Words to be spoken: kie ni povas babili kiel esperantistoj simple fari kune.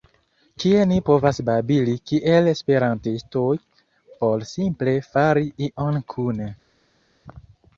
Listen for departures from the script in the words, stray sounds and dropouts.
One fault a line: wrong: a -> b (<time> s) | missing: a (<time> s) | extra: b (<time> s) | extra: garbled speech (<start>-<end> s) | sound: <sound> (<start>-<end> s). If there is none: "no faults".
extra: por (4.2 s)
extra: ion (5.7 s)